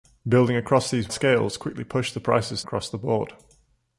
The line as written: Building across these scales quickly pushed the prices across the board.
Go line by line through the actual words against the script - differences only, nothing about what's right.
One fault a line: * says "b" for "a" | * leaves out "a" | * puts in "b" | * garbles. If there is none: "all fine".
all fine